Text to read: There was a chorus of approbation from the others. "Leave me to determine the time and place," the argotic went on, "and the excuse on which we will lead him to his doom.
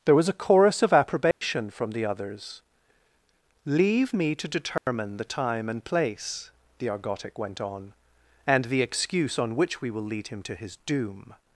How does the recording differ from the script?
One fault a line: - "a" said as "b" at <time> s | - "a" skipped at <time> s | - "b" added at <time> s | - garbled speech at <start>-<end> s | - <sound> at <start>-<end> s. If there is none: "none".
- dropout at 1.3-1.4 s
- dropout at 4.8-4.9 s